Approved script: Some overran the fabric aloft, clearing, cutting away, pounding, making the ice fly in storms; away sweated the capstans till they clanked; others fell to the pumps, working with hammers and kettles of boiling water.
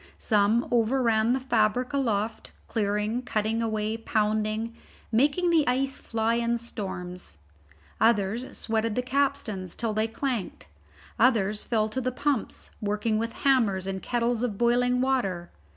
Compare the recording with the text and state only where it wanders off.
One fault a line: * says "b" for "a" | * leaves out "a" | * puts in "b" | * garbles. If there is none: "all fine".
* says "others" for "away"